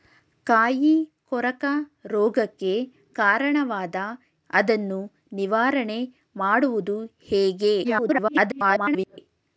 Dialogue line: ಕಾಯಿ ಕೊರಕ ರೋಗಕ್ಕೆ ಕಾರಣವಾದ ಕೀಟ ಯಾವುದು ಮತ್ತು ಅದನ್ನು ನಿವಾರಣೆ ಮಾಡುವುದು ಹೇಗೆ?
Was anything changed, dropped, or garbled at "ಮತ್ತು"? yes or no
yes